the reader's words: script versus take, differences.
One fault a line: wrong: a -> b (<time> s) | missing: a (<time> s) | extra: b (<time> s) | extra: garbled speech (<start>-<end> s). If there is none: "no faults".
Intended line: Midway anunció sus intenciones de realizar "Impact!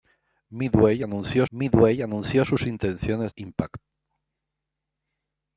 extra: midway anunció (1.5 s)
missing: de realizar (3.3 s)